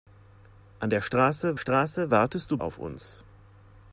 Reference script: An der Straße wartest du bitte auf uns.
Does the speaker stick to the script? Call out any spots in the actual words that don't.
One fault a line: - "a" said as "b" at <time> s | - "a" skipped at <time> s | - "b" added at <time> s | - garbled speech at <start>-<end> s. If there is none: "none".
- "Straße" added at 1.6 s
- "bitte" skipped at 2.6 s